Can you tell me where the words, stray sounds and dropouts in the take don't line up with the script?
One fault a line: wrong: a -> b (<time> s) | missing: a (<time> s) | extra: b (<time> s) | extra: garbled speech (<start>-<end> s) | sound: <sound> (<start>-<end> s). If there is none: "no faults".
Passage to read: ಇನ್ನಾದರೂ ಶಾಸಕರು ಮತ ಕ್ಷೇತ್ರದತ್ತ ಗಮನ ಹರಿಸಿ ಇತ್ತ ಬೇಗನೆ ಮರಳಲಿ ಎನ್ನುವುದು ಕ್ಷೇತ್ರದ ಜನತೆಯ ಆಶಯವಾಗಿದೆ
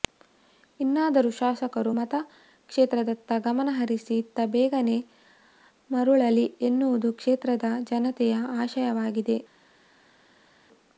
no faults